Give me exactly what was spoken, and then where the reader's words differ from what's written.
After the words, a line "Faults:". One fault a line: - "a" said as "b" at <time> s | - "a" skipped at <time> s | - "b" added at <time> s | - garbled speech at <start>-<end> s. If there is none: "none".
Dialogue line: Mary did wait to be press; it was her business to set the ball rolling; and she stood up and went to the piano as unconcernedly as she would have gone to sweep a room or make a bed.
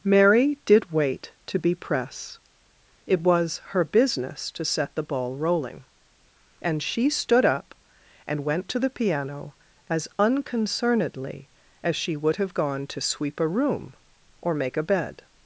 Mary did wait to be press; it was her business to set the ball rolling; and she stood up and went to the piano as unconcernedly as she would have gone to sweep a room or make a bed.
Faults:
none